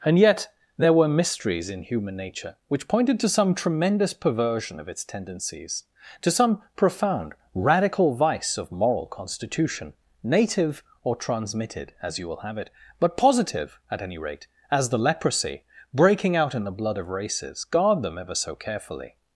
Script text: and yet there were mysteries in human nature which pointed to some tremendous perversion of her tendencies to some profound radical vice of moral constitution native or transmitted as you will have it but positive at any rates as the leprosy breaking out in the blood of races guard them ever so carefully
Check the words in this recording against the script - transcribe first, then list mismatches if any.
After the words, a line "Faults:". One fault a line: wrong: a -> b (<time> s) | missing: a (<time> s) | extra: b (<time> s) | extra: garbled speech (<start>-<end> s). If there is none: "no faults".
and yet there were mysteries in human nature which pointed to some tremendous perversion of its tendencies to some profound radical vice of moral constitution native or transmitted as you will have it but positive at any rate as the leprosy breaking out in the blood of races guard them ever so carefully
Faults:
wrong: her -> its (4.9 s)
wrong: rates -> rate (14.2 s)